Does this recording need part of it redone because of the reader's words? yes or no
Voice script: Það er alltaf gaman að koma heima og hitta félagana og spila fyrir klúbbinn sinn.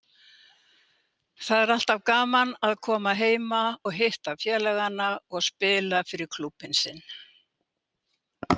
no